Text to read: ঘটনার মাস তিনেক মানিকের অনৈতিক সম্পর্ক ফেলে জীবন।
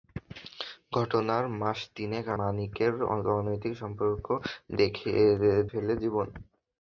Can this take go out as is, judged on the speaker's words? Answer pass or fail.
pass